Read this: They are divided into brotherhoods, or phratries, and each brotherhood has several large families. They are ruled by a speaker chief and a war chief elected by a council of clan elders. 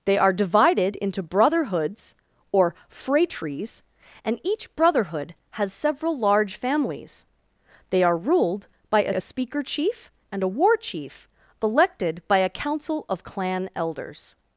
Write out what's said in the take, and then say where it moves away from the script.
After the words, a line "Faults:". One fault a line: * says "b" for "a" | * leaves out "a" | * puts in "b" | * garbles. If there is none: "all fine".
They are divided into brotherhoods, or phratries, and each brotherhood has several large families. They are ruled by a a speaker chief and a war chief elected by a council of clan elders.
Faults:
* puts in "a"